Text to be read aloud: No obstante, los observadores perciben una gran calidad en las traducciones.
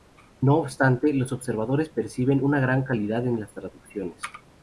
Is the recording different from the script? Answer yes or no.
no